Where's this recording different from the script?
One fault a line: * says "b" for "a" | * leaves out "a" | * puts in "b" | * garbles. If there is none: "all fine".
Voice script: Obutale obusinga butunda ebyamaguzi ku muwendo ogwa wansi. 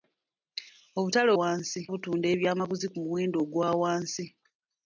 * says "wansi" for "obusinga"